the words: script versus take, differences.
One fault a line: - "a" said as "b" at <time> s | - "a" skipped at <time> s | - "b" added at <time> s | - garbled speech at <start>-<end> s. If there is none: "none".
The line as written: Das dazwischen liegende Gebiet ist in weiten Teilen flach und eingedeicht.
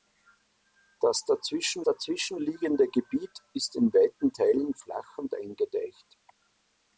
- "dazwischen" added at 1.8 s